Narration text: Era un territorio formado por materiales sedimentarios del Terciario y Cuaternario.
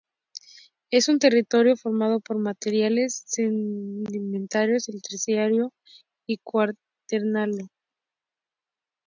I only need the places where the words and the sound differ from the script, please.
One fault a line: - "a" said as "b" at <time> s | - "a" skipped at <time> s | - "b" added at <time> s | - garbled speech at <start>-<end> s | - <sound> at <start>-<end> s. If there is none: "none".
- "Era" said as "Es" at 0.9 s